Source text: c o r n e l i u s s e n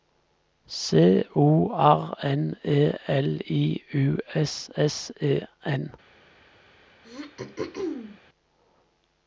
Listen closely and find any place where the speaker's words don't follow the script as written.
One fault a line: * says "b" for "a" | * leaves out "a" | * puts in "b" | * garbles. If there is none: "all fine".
all fine